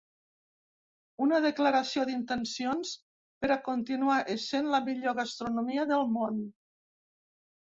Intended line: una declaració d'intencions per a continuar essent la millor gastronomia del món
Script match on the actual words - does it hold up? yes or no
yes